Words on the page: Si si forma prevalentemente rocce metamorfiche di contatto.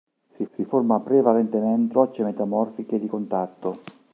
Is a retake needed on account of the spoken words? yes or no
no